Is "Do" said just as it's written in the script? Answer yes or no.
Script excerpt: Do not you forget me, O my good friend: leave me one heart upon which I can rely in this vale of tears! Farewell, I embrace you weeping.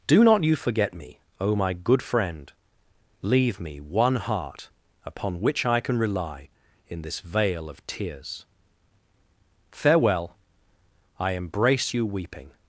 yes